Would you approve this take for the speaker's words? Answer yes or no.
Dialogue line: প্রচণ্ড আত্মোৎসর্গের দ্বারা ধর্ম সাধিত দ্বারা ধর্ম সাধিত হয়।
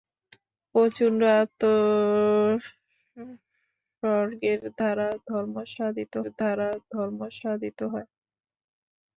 yes